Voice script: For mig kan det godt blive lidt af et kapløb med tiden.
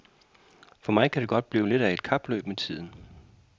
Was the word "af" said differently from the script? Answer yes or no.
no